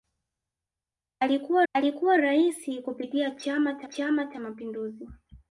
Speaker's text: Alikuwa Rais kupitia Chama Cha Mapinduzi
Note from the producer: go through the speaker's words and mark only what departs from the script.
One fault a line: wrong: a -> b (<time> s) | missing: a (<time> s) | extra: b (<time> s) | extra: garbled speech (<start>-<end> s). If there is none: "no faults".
extra: alikuwa (1.7 s)
extra: Chama Cha (3.8 s)